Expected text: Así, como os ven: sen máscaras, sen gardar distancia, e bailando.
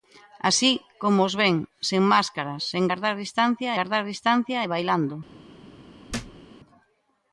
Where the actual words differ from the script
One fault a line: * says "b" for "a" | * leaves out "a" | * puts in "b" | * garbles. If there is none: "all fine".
* puts in "gardar distancia"